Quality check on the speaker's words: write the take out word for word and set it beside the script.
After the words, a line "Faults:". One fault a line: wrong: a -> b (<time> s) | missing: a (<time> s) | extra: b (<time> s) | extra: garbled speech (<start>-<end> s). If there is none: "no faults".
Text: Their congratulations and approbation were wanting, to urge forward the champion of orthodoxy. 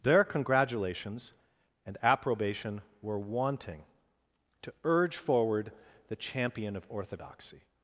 Their congratulations and approbation were wanting, to urge forward the champion of orthodoxy.
Faults:
no faults